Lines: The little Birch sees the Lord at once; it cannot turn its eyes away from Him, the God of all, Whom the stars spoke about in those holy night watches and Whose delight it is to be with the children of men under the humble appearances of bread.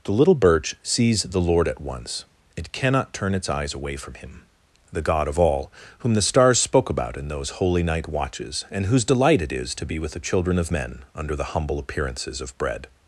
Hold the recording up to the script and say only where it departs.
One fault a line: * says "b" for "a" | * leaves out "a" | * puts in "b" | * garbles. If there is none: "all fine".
all fine